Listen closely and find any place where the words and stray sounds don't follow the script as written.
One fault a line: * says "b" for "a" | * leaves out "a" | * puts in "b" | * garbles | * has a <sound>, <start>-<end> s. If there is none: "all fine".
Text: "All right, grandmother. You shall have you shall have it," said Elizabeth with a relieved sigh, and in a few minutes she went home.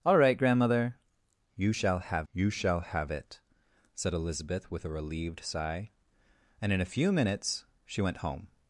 all fine